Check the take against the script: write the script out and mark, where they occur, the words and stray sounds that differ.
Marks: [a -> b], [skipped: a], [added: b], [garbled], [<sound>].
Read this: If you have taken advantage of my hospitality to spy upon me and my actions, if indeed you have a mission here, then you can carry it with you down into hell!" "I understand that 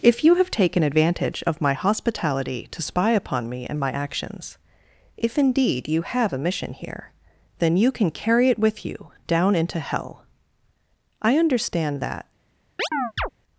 If you have taken advantage of my hospitality to spy upon me and my actions, if indeed you have a mission here, then you can carry it with you down into hell!" "I understand that [chirp]